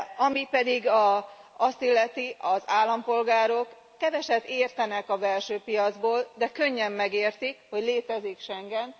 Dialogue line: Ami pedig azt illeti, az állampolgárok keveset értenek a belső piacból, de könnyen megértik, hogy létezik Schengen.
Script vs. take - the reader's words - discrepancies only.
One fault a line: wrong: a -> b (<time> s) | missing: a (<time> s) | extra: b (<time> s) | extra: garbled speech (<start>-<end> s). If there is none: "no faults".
no faults